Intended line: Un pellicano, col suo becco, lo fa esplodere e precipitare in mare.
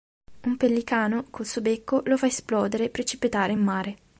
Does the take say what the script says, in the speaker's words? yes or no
yes